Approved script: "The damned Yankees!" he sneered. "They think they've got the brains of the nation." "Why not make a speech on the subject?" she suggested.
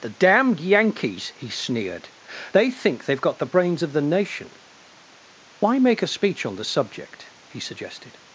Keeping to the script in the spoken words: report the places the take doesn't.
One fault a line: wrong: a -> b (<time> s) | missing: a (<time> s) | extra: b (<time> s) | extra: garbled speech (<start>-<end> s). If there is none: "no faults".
missing: not (5.8 s)
wrong: she -> he (7.5 s)